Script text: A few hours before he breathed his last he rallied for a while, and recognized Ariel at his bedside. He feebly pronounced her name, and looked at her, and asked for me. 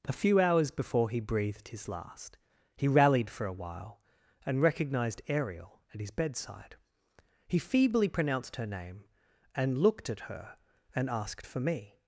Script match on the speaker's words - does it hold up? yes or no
yes